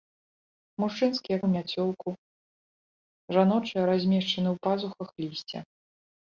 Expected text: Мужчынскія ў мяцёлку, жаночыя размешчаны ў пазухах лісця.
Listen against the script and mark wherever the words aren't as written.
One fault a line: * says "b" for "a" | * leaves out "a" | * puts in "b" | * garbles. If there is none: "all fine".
all fine